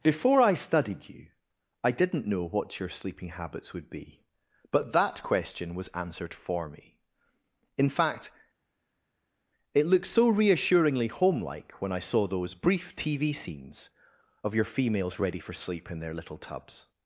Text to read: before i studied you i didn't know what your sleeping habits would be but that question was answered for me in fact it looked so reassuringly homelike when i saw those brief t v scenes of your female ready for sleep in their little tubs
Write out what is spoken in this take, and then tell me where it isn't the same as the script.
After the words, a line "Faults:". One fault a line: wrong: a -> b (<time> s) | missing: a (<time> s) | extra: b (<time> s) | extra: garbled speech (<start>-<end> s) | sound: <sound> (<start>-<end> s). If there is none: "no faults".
before i studied you i didn't know what your sleeping habits would be but that question was answered for me in fact it looked so reassuringly homelike when i saw those brief t v scenes of your females ready for sleep in their little tubs
Faults:
wrong: female -> females (14.6 s)